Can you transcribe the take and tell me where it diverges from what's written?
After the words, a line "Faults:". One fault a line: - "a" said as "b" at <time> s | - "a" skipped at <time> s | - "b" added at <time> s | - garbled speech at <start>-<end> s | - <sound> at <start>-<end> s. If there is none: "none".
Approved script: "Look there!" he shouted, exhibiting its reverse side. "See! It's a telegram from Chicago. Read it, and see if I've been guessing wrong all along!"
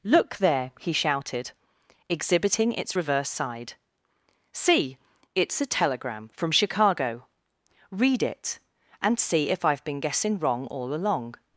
"Look there!" he shouted, exhibiting its reverse side. "See! It's a telegram from Chicago. Read it, and see if I've been guessing wrong all along!"
Faults:
none